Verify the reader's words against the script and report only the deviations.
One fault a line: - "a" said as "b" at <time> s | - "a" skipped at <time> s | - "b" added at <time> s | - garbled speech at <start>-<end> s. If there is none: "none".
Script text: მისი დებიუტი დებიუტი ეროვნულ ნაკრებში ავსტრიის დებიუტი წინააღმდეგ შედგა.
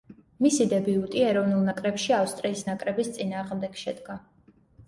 - "დებიუტი" skipped at 1.2 s
- "დებიუტი" said as "ნაკრების" at 2.7 s